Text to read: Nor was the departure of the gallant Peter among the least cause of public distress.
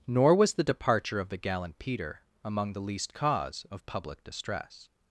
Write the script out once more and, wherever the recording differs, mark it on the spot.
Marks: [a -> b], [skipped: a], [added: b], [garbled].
Nor was the departure of the gallant Peter among the least cause of public distress.